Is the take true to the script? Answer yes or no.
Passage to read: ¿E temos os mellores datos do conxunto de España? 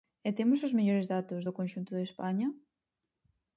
yes